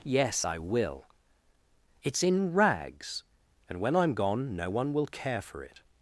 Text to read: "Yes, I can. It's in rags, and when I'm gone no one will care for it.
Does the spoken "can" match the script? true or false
false